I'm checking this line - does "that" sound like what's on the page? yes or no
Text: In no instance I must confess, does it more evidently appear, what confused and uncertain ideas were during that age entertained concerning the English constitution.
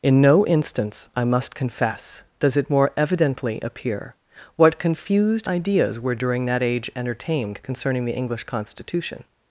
yes